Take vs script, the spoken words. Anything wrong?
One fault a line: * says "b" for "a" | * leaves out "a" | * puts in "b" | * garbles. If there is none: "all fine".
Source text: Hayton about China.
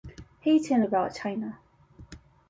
all fine